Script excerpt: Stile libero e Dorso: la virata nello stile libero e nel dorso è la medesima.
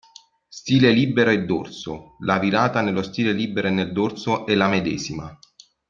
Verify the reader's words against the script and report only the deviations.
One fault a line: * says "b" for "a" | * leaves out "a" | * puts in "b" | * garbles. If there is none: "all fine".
all fine